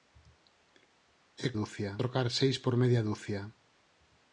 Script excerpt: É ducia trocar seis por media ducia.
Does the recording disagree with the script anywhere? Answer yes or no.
no